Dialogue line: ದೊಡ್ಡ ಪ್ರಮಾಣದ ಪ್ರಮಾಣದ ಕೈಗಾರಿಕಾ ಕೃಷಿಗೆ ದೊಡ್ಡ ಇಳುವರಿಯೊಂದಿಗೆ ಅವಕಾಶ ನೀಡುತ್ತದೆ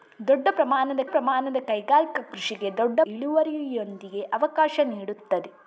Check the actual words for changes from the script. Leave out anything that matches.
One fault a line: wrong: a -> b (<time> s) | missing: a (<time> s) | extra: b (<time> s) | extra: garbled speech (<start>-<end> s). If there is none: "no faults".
no faults